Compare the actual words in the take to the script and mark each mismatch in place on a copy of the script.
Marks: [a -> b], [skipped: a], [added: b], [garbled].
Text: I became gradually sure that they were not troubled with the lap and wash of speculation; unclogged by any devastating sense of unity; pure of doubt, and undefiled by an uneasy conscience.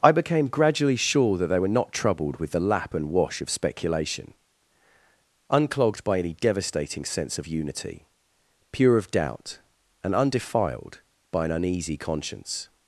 I became gradually sure that they were not troubled with the lap and wash of speculation; unclogged by any devastating sense of unity; pure of doubt, and undefiled by an uneasy conscience.